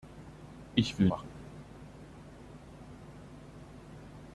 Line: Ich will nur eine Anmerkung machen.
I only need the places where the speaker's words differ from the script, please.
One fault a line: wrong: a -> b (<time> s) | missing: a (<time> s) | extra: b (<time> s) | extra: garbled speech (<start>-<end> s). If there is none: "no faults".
missing: nur eine Anmerkung (1.1 s)